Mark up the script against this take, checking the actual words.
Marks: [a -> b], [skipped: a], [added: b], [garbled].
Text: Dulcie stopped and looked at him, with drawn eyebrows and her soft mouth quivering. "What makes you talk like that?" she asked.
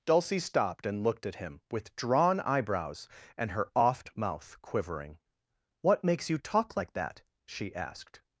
Dulcie stopped and looked at him, with drawn eyebrows and her [soft -> oft] mouth quivering. "What makes you talk like that?" she asked.